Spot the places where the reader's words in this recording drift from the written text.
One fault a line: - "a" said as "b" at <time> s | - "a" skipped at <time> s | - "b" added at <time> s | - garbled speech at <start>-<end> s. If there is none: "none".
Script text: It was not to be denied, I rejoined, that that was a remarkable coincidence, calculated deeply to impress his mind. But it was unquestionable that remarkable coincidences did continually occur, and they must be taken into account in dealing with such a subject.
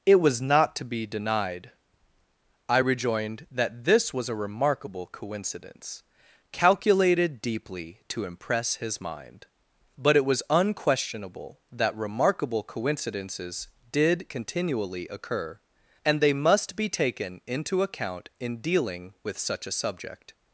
- "that" said as "this" at 3.8 s